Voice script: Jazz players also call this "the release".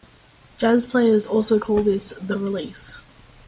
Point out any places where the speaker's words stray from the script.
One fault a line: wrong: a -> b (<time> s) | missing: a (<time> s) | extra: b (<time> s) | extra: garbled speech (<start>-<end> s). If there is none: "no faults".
no faults